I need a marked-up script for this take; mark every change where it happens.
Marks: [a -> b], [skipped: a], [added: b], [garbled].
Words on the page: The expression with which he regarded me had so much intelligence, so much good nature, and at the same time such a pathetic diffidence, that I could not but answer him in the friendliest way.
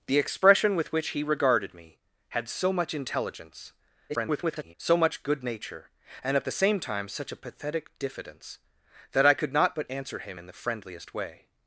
The expression with which he regarded me had so much intelligence, [garbled] so much good nature, and at the same time such a pathetic diffidence, that I could not but answer him in the friendliest way.